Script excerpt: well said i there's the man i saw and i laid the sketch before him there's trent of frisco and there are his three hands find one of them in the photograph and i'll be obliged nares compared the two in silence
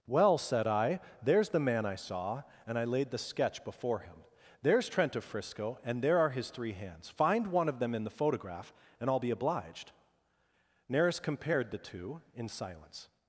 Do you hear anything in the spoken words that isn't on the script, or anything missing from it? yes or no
no